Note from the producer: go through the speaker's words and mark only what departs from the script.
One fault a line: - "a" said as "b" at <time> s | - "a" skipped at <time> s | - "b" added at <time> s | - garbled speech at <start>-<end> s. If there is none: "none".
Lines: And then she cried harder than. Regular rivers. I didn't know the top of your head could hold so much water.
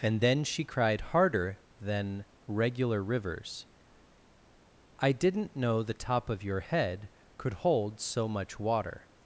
none